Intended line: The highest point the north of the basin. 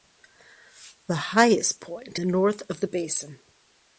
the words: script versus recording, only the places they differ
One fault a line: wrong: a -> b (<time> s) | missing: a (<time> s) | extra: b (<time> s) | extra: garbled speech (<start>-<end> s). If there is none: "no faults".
no faults